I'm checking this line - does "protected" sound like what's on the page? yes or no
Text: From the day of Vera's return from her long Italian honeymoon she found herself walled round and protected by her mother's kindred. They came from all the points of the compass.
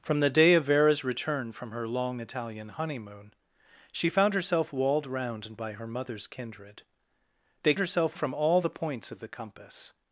no